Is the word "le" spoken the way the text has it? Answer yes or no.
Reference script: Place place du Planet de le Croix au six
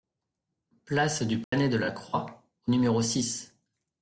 no